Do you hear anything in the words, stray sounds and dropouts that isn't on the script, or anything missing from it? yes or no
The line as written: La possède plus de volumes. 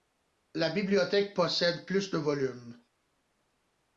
yes